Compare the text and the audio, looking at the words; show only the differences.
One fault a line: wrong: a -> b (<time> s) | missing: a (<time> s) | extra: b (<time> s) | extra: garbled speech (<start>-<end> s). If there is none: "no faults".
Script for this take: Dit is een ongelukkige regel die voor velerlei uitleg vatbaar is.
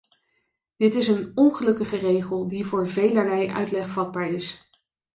no faults